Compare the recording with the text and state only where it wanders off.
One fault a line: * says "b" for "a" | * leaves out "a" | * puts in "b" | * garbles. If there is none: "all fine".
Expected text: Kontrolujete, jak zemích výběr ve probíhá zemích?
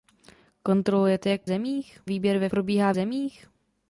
all fine